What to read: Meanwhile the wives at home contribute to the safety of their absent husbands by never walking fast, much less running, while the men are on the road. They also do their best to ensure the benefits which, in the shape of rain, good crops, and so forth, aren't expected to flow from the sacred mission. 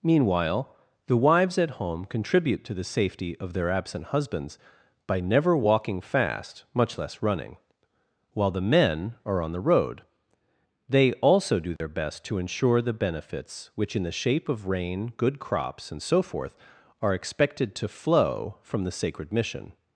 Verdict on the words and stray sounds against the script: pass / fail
fail